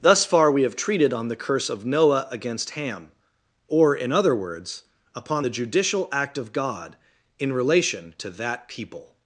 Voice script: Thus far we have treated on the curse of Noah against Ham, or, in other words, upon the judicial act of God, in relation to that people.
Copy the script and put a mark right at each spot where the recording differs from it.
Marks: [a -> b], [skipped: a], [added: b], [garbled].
Thus far we have treated on the curse of Noah against Ham, or, in other words, upon the judicial act of God, in relation to that people.